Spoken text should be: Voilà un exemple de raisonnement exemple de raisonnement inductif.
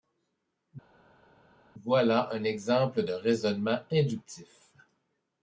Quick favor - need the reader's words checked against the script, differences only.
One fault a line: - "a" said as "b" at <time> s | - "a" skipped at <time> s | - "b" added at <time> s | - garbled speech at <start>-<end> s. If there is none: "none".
- "exemple de raisonnement" skipped at 3.8 s